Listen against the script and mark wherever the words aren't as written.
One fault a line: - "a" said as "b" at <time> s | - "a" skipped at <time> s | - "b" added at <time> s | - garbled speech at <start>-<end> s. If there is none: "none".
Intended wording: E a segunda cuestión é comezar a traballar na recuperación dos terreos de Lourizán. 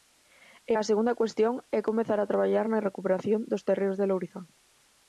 none